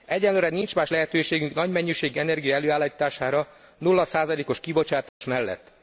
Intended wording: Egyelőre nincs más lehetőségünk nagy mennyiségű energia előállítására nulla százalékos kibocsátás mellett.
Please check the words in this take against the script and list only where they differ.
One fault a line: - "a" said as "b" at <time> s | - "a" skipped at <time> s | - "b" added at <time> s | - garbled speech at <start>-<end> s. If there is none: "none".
none